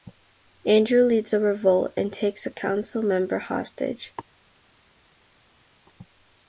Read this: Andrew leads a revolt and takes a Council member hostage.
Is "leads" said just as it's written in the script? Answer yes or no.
yes